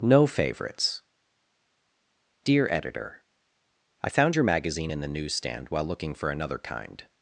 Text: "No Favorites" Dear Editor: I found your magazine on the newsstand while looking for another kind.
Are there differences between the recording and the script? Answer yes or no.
yes